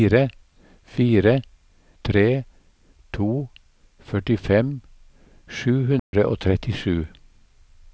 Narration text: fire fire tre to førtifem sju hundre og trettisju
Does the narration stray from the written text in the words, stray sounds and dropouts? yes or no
yes